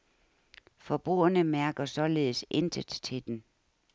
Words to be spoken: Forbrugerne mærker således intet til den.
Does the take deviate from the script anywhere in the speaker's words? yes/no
no